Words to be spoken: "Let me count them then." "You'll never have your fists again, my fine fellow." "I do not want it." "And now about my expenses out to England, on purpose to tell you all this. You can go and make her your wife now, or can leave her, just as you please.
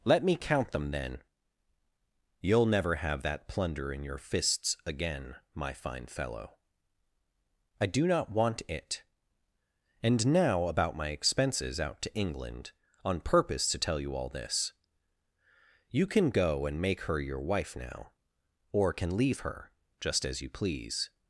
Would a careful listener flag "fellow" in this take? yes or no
no